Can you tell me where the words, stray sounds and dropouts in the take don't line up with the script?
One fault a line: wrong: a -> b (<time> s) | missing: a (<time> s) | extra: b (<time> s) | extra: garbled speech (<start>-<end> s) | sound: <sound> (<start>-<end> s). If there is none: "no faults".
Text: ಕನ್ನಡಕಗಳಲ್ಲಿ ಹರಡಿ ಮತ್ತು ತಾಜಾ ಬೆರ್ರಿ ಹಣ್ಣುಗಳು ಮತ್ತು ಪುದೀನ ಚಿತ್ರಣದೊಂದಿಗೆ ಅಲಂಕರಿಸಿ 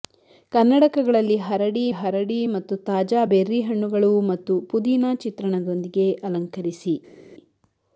extra: ಹರಡಿ (1.9 s)